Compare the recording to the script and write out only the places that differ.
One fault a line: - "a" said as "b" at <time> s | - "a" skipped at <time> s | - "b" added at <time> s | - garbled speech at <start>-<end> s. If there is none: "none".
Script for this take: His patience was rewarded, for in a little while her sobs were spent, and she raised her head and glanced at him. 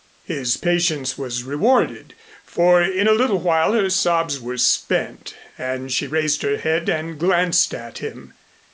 none